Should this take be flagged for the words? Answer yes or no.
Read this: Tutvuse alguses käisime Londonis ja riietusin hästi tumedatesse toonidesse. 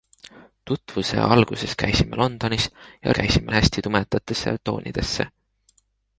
yes